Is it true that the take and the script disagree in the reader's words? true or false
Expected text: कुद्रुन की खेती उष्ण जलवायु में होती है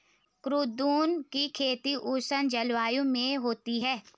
false